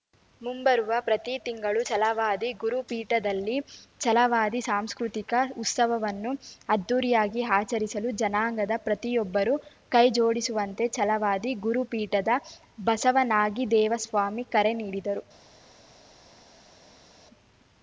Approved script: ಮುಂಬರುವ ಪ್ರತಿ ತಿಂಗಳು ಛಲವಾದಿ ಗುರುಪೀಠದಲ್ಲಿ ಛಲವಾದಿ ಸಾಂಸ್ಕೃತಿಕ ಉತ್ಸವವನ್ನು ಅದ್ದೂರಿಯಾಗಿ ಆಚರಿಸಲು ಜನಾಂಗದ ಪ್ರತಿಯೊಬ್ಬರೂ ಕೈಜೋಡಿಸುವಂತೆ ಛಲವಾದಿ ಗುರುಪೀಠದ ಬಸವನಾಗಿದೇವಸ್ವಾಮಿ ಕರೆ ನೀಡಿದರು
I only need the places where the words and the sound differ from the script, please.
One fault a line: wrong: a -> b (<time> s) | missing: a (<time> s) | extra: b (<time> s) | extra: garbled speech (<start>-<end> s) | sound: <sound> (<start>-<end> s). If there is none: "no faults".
no faults